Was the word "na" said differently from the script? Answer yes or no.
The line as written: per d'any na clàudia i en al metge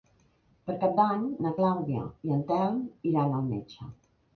no